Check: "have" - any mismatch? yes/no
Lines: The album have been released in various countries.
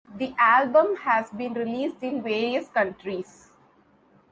yes